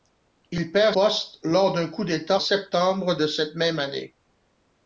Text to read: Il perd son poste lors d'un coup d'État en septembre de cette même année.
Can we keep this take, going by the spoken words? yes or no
no